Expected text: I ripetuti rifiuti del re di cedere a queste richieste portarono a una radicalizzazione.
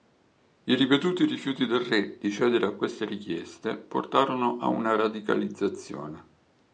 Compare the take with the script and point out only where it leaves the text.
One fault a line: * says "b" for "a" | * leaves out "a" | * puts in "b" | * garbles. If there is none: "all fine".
all fine